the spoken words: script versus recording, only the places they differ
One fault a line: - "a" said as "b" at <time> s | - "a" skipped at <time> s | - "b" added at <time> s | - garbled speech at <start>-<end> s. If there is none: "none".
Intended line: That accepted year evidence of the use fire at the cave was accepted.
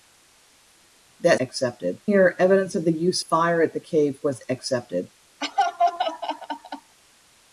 none